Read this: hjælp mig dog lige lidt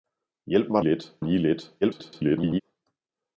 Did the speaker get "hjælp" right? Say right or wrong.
right